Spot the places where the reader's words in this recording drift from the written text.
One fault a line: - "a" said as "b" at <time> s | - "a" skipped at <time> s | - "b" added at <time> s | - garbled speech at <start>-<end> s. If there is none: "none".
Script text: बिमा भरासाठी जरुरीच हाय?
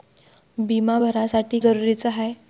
none